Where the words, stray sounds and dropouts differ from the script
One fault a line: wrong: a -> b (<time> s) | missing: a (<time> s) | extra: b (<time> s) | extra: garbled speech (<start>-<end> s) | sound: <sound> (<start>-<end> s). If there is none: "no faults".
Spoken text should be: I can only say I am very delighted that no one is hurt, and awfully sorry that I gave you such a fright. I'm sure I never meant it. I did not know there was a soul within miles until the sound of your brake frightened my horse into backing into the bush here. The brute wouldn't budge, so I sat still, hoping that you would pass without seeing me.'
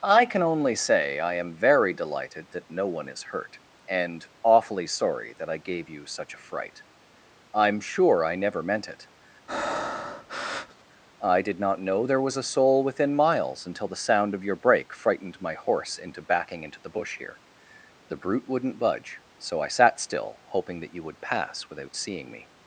sound: breath (9.5-10.8 s)